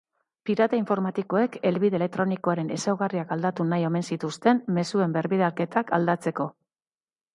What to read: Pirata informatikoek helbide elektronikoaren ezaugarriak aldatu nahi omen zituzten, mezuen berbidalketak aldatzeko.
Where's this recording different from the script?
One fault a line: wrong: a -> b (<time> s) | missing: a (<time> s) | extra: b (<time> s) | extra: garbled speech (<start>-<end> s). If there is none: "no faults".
no faults